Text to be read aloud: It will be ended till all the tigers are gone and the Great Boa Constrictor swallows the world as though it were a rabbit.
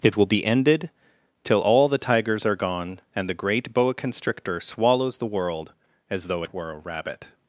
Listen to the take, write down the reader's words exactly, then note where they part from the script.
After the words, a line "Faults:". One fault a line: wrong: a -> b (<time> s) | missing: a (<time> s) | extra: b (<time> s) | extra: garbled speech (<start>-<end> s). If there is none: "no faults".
It will be ended till all the tigers are gone and the Great Boa Constrictor swallows the world as though it were a rabbit.
Faults:
no faults